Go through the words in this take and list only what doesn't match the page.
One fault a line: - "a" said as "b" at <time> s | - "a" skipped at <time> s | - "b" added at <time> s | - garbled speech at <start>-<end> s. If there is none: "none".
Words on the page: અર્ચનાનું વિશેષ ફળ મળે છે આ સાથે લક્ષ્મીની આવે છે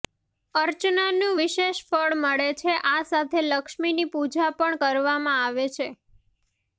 - "પૂજા પણ કરવામાં" added at 4.1 s